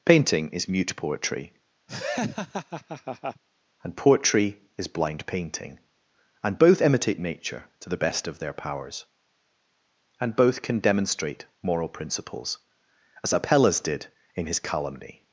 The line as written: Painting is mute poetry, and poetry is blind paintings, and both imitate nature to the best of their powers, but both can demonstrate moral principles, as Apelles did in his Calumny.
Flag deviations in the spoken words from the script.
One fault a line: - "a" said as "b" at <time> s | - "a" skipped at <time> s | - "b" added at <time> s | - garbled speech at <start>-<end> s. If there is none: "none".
- "paintings" said as "painting" at 5.2 s
- "but" said as "and" at 10.2 s